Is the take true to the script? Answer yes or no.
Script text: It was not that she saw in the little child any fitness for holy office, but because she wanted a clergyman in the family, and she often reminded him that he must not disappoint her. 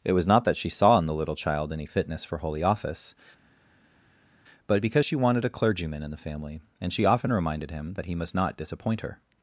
yes